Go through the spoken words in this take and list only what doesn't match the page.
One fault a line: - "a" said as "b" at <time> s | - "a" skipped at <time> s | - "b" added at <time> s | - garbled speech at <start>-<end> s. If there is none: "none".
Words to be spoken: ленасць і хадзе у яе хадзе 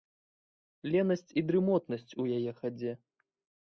- "хадзе" said as "дрымотнасць" at 1.5 s